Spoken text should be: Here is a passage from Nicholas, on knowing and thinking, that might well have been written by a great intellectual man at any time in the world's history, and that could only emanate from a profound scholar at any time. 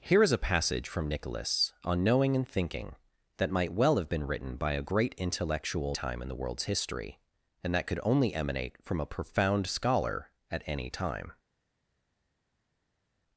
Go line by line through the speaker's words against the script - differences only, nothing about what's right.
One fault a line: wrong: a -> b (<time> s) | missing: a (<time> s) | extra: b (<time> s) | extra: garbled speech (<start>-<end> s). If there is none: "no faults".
missing: man at any (6.0 s)